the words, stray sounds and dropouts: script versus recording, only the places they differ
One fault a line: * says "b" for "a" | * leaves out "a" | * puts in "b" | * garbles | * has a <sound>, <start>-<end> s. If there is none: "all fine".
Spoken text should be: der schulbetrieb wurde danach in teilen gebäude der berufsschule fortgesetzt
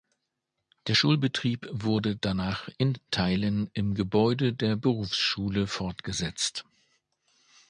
* puts in "im"